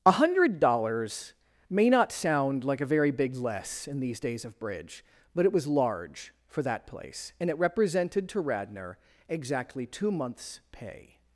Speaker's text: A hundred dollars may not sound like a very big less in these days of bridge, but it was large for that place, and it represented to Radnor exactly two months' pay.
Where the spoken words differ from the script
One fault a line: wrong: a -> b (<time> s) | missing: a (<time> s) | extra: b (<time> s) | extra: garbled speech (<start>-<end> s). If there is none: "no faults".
no faults